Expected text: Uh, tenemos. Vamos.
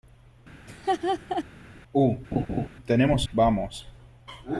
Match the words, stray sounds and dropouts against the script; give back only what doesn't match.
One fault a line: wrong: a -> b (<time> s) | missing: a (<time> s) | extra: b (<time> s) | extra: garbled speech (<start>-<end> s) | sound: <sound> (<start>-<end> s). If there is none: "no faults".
sound: laugh (0.7-1.4 s)
sound: laugh (2.3-2.7 s)